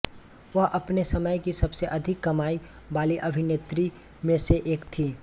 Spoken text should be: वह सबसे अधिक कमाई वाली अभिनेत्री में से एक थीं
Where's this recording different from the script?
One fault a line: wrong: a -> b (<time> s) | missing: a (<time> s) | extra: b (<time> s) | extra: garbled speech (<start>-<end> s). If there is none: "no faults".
extra: अपने समय की (0.7 s)